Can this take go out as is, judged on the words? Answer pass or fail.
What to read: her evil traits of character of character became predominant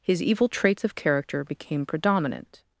fail